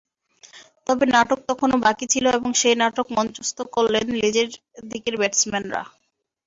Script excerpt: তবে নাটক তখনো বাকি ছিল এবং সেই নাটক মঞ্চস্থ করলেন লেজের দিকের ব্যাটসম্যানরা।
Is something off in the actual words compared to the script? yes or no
no